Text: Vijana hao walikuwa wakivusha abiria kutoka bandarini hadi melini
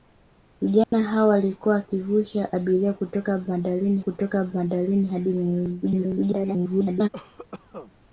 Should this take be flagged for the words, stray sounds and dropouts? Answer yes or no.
yes